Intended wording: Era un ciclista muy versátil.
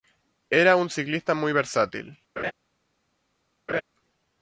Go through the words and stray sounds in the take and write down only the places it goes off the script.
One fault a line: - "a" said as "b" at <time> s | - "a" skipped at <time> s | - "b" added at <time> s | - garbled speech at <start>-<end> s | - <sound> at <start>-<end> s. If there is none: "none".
- laugh at 2.4-2.5 s
- laugh at 3.7-3.8 s